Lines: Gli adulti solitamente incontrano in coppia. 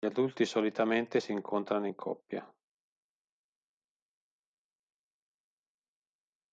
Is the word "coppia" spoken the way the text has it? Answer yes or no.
yes